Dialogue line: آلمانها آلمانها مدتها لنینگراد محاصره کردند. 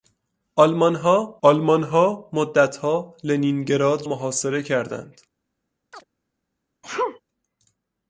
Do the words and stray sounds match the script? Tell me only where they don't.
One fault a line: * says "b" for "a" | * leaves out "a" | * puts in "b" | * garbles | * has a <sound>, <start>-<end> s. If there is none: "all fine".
* has a chirp, 5.9-6.0 s
* has a sneeze, 6.8-7.2 s